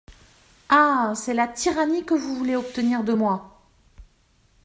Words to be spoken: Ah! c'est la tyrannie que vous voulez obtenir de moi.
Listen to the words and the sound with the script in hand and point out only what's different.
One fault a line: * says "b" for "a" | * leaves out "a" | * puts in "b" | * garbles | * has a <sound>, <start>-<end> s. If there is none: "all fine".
all fine